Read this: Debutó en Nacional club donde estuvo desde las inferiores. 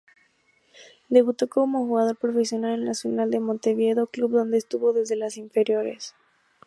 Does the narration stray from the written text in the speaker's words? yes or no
yes